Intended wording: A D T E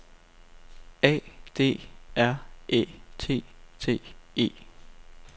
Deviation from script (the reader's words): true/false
true